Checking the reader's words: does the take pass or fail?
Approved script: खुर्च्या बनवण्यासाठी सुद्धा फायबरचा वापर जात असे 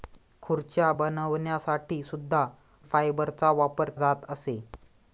pass